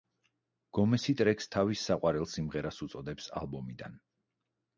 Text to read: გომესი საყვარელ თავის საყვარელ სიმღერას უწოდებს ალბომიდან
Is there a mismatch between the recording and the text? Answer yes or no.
yes